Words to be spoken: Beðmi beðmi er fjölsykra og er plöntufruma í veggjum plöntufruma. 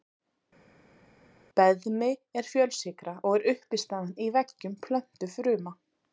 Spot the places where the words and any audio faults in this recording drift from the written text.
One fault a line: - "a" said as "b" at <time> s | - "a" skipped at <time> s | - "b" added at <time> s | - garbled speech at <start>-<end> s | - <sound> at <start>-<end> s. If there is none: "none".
- "beðmi" skipped at 2.1 s
- "plöntufruma" said as "uppistaðan" at 3.6 s